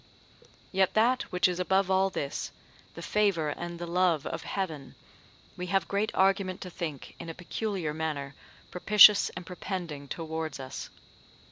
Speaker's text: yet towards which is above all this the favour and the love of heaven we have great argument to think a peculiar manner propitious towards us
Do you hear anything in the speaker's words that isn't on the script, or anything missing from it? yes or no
yes